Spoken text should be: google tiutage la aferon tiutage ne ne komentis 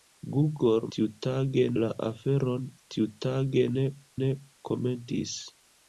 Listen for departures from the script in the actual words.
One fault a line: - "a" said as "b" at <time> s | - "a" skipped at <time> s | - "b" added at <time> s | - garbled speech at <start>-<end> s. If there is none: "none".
none